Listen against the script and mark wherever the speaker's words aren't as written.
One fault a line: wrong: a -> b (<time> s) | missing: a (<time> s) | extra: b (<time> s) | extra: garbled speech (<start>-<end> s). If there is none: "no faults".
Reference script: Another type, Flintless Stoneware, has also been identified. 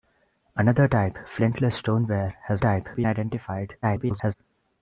wrong: also -> type (2.6 s)
extra: garbled speech (3.8-4.3 s)